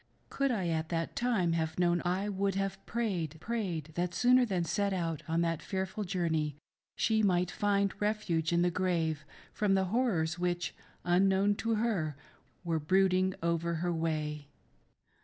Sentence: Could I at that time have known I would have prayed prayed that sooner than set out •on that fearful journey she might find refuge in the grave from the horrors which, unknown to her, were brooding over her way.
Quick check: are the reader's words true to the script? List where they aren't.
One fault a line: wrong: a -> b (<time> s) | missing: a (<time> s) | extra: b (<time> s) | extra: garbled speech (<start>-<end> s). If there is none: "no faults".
no faults